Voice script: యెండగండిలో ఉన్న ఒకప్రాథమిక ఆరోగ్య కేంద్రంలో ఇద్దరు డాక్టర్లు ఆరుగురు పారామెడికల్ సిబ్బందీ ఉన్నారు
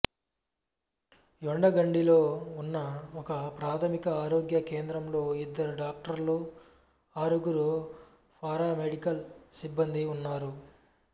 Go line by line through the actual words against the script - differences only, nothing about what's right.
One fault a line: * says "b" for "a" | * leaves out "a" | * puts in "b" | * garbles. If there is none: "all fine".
all fine